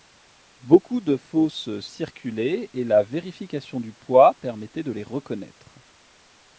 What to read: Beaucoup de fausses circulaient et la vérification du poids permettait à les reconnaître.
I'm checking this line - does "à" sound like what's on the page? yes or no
no